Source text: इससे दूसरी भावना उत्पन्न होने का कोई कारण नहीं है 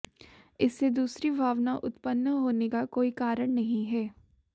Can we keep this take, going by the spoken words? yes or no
yes